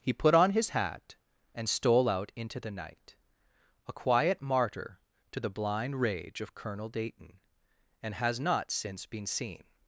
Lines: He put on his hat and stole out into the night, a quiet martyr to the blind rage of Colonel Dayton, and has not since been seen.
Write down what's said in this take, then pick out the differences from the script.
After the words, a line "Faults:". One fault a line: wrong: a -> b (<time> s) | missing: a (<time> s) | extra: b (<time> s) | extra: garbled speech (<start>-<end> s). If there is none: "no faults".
He put on his hat and stole out into the night, a quiet martyr to the blind rage of Colonel Dayton, and has not since been seen.
Faults:
no faults